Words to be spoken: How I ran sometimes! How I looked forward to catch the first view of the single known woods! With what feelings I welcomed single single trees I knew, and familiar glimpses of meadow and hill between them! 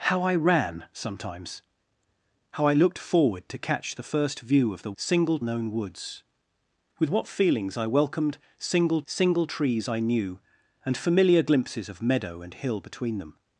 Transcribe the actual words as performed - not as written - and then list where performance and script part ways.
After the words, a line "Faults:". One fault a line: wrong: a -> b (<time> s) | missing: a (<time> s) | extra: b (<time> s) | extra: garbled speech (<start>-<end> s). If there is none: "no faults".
How I ran sometimes! How I looked forward to catch the first view of the single known woods! With what feelings I welcomed single single trees I knew, and familiar glimpses of meadow and hill between them!
Faults:
no faults